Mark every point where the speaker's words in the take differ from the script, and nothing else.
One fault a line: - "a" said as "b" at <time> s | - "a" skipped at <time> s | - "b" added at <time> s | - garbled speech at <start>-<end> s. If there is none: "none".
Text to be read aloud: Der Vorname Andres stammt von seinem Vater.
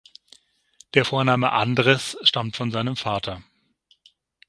none